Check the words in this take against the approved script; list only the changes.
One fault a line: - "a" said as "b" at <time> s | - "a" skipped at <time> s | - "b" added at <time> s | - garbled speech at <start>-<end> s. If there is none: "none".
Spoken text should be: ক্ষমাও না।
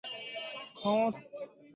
none